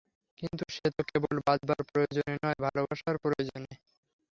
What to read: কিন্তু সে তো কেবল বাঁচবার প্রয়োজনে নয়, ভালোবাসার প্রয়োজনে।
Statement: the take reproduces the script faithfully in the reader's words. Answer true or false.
true